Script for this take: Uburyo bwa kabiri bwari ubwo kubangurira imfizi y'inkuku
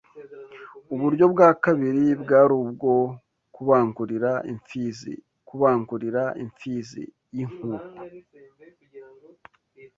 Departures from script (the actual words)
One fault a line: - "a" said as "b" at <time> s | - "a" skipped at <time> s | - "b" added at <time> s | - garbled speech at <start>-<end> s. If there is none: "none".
- "kubangurira imfizi" added at 5.5 s